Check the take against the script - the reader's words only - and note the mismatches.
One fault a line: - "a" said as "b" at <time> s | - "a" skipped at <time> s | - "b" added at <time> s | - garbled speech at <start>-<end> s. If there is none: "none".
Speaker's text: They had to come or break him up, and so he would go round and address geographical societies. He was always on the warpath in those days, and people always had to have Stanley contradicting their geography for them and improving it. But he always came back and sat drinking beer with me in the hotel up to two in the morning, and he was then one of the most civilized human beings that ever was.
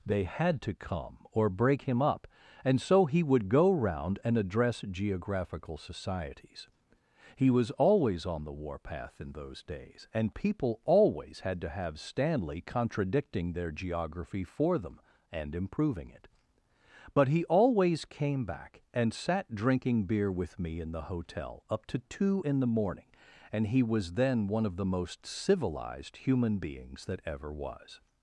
none